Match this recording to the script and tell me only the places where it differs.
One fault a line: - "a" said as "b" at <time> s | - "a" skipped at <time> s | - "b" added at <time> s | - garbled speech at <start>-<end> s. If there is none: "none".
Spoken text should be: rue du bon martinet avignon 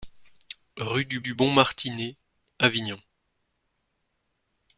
- "du" added at 1.2 s